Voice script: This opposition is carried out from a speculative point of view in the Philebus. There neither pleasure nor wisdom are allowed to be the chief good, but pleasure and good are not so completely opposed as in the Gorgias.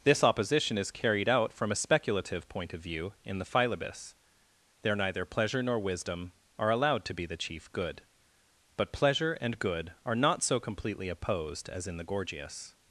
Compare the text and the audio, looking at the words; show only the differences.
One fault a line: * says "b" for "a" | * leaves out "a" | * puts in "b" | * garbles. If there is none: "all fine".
all fine